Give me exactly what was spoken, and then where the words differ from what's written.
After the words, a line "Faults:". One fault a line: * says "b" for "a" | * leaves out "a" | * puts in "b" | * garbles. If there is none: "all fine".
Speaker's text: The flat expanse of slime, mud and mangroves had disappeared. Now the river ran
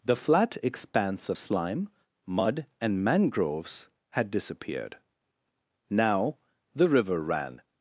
The flat expanse of slime, mud and mangroves had disappeared. Now the river ran
Faults:
all fine